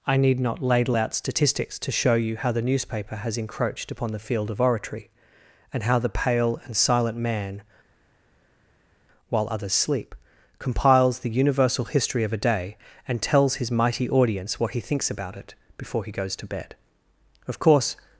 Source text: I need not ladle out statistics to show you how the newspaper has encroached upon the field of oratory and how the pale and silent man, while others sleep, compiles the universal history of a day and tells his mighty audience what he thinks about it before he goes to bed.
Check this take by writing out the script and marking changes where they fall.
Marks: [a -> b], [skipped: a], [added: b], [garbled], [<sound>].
I need not ladle out statistics to show you how the newspaper has encroached upon the field of oratory and how the pale and silent man, while others sleep, compiles the universal history of a day and tells his mighty audience what he thinks about it before he goes to bed. [added: Of course]